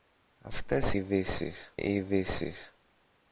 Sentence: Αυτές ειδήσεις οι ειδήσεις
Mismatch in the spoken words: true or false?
false